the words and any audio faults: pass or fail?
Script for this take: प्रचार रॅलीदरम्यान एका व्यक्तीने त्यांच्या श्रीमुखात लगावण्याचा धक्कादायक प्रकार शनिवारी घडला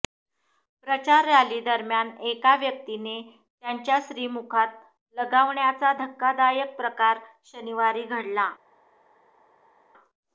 pass